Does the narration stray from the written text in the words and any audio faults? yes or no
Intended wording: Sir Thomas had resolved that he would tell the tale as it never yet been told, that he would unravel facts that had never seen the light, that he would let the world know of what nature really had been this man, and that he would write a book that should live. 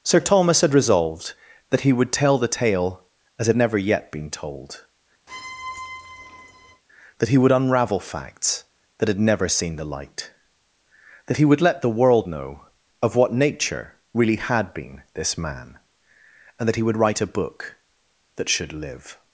yes